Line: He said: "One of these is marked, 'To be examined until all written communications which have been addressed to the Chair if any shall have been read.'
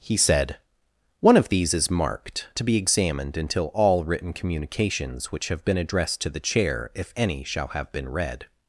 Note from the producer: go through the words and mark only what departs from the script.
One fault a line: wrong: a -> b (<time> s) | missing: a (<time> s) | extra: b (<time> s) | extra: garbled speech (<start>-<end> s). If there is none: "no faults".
no faults